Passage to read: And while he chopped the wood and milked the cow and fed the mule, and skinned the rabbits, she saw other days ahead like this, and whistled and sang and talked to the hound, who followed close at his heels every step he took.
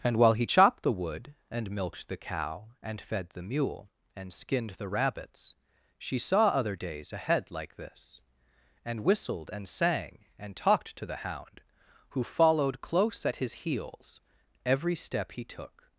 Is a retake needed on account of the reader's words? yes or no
no